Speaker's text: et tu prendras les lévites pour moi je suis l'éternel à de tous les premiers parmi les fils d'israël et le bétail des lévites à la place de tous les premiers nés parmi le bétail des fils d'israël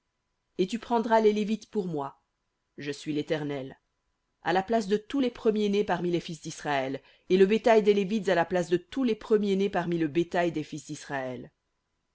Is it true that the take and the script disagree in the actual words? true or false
true